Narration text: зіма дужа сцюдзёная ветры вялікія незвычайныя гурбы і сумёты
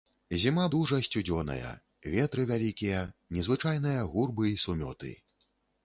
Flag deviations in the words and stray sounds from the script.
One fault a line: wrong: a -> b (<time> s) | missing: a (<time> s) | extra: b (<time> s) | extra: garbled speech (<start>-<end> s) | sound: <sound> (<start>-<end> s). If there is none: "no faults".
no faults